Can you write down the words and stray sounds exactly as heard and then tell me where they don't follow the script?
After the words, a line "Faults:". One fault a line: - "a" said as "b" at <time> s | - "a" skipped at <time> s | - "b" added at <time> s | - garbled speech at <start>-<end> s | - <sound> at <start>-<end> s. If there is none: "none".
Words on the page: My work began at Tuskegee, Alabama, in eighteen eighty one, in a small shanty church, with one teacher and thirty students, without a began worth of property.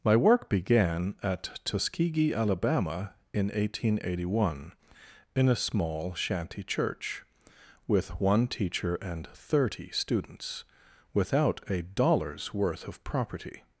My work began at Tuskegee, Alabama, in eighteen eighty one, in a small shanty church, with one teacher and thirty students, without a dollar's worth of property.
Faults:
- "began" said as "dollar's" at 11.8 s